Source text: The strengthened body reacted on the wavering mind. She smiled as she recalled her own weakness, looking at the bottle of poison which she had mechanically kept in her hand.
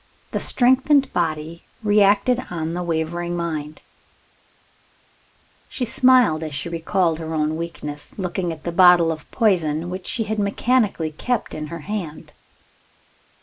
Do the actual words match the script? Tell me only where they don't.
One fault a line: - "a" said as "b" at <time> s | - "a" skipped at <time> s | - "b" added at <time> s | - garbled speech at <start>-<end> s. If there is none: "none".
none